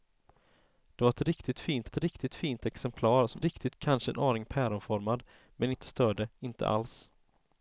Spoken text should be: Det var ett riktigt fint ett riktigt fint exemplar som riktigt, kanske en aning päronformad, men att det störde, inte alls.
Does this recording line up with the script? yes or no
yes